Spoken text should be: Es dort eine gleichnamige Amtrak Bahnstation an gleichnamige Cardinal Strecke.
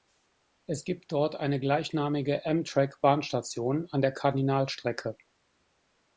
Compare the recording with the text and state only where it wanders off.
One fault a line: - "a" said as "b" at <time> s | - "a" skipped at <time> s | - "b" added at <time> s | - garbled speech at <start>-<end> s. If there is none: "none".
- "gibt" added at 0.8 s
- "gleichnamige" said as "der" at 4.0 s